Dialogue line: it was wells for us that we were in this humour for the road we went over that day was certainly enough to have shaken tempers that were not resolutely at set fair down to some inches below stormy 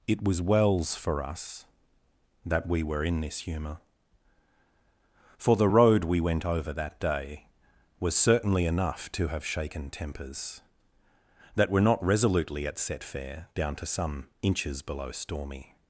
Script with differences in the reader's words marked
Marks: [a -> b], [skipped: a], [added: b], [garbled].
it was wells for us that we were in this humour for the road we went over that day was certainly enough to have shaken tempers that were not resolutely at set fair down to some inches below stormy